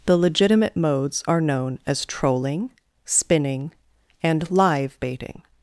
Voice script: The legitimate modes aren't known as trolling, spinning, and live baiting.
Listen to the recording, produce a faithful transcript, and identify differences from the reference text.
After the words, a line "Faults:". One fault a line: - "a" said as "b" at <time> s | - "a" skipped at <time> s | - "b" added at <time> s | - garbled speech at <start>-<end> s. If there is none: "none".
The legitimate modes are known as trolling, spinning, and live baiting.
Faults:
- "aren't" said as "are" at 1.3 s